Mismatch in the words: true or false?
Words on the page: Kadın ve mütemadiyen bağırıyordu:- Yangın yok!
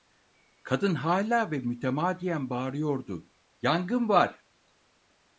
true